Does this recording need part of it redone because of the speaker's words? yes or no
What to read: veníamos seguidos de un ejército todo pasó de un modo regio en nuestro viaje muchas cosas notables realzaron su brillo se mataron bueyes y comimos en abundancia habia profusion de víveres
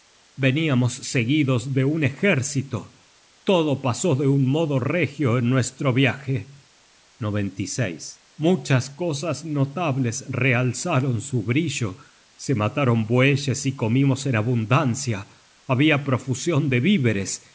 no